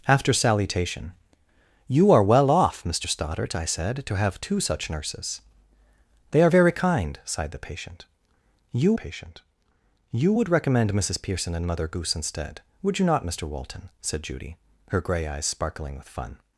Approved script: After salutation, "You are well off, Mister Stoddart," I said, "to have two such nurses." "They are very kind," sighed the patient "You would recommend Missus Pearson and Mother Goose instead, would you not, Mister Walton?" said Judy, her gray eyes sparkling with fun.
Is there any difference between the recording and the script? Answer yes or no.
yes